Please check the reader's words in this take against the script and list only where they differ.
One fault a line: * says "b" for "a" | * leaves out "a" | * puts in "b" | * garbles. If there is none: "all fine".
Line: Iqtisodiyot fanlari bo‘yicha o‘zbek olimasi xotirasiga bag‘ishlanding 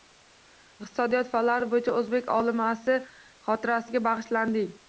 all fine